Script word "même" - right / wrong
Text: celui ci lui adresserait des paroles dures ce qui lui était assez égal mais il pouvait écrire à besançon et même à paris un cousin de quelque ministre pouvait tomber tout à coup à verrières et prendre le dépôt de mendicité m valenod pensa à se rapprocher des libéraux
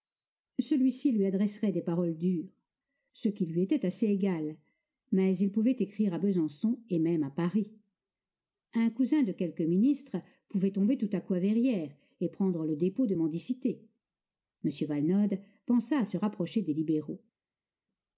right